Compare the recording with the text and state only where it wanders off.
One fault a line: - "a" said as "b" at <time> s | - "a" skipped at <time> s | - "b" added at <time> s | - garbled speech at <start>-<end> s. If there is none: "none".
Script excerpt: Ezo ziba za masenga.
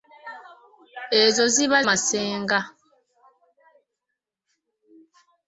- "za" skipped at 1.8 s